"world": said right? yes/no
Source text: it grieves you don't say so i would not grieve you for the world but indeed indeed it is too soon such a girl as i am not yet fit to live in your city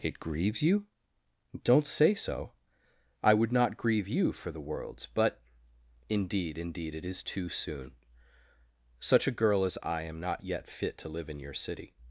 no